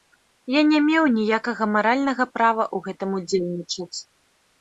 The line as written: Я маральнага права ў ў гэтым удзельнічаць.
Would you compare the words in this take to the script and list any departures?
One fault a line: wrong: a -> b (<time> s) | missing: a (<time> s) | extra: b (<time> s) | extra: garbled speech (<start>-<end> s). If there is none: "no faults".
extra: не меў ніякага (0.7 s)
missing: ў (2.9 s)